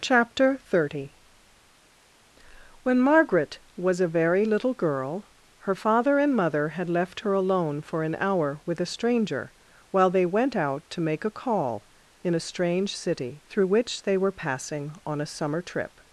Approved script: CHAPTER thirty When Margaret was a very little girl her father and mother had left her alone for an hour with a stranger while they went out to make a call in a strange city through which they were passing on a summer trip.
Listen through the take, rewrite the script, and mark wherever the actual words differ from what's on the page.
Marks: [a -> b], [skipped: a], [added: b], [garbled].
CHAPTER thirty When Margaret was a very little girl her father and mother had left her alone for an hour with a stranger while they went out to make a call in a strange city through which they were passing on a summer trip.